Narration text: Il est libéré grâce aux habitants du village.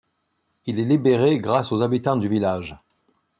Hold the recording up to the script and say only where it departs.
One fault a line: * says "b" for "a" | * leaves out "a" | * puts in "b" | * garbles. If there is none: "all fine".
all fine